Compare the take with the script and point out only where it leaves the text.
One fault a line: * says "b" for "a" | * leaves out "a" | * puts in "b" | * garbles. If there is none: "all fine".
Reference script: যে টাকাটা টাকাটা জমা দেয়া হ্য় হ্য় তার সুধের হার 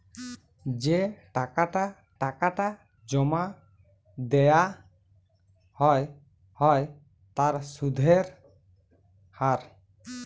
all fine